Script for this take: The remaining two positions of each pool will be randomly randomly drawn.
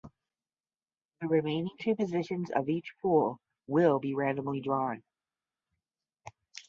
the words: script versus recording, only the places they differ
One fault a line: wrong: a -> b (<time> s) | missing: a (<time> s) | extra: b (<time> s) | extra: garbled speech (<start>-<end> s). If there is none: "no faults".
missing: randomly (4.6 s)